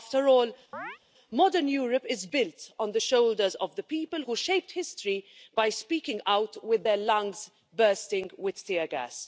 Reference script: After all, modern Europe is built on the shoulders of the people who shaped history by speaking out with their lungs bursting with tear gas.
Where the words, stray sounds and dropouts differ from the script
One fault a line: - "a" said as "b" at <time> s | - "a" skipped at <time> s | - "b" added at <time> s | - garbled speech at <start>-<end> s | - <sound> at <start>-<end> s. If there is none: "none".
- chirp at 0.7-1.0 s